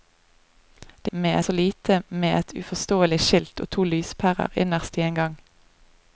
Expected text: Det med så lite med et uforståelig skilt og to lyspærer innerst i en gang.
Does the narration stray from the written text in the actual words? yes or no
no